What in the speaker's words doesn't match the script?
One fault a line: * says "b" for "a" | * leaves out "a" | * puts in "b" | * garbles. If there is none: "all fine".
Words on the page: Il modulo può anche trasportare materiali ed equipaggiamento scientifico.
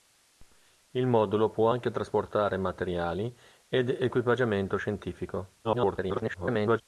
* garbles